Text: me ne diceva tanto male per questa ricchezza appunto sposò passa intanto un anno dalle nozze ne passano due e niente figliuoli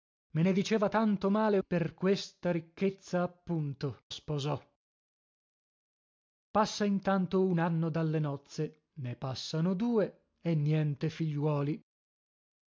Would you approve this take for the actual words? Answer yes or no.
yes